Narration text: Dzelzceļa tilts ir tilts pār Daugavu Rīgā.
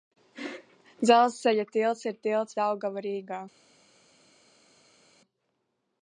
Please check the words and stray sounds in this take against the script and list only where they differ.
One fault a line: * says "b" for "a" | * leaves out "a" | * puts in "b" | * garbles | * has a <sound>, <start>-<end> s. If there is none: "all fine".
* leaves out "pār"